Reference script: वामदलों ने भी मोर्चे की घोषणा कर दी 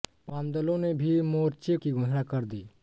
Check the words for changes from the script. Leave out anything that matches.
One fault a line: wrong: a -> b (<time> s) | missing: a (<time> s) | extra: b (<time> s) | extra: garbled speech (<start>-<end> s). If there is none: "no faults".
no faults